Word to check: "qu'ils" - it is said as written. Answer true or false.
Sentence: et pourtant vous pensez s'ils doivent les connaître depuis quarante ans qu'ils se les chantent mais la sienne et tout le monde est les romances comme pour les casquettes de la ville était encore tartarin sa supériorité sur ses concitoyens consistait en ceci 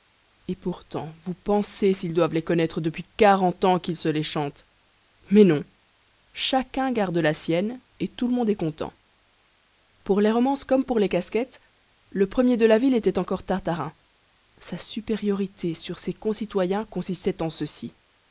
true